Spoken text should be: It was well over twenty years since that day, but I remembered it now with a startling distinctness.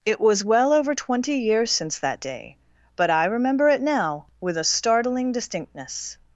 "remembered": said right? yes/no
no